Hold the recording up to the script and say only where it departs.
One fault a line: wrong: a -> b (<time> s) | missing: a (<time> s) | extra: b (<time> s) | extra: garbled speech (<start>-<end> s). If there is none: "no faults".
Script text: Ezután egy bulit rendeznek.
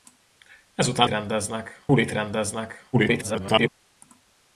wrong: egy -> rendeznek (1.1 s)
extra: garbled speech (2.9-3.7 s)